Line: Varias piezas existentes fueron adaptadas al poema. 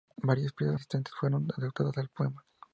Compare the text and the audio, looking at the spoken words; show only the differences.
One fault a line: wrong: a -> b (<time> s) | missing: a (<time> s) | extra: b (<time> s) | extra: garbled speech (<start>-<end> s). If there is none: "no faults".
no faults